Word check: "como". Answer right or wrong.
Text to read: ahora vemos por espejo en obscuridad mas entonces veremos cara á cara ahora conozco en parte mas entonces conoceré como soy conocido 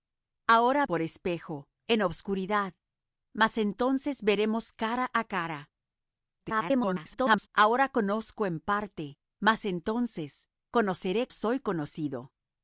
wrong